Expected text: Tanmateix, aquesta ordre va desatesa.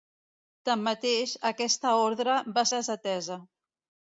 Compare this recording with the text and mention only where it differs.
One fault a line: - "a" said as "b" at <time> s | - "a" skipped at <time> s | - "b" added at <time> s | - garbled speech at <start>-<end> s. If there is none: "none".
none